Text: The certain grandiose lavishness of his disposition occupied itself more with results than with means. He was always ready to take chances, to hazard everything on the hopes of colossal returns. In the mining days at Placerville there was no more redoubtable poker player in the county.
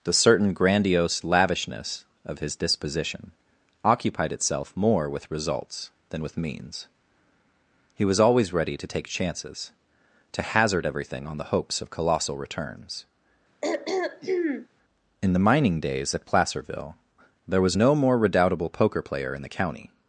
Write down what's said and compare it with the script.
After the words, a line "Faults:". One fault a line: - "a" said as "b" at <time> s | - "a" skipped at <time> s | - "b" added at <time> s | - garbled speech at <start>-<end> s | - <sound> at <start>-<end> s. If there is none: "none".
The certain grandiose lavishness of his disposition occupied itself more with results than with means. He was always ready to take chances, to hazard everything on the hopes of colossal returns. In the mining days at Placerville there was no more redoubtable poker player in the county.
Faults:
- throat clearing at 13.6-14.7 s